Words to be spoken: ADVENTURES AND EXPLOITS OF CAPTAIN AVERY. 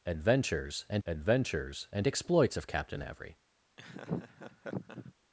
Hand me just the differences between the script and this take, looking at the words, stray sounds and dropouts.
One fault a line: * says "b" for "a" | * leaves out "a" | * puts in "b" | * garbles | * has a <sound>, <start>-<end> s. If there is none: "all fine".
* puts in "adventures AND"
* has a laugh, 3.8-5.1 s